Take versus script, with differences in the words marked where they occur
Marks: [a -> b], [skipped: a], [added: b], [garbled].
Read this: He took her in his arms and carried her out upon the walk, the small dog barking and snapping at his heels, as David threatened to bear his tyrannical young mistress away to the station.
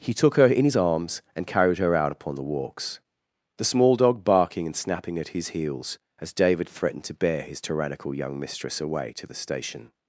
He took her in his arms and carried her out upon the [walk, -> walks] the small dog barking and snapping at his heels, as David threatened to bear his tyrannical young mistress away to the station.